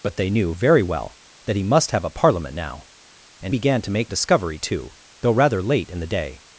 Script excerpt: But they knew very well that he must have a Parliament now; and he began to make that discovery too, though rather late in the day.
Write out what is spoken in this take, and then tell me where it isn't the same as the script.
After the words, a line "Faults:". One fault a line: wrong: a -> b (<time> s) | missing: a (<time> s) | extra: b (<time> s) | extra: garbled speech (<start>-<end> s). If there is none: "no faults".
But they knew very well that he must have a Parliament now; and began to make discovery too, though rather late in the day.
Faults:
missing: he (3.5 s)
missing: that (4.1 s)